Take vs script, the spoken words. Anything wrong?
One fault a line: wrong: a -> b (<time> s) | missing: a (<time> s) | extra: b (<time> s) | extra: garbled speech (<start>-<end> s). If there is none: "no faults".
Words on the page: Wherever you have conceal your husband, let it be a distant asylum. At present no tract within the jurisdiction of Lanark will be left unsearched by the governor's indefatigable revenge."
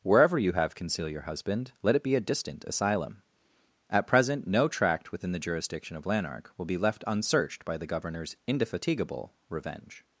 no faults